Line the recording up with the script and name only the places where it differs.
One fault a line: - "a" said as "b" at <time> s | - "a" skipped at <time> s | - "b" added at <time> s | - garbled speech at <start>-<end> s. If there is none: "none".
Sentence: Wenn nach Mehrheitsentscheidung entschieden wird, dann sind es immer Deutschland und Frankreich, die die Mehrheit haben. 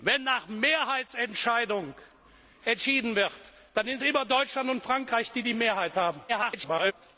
- "es" skipped at 4.0 s
- garbled speech at 6.3-6.9 s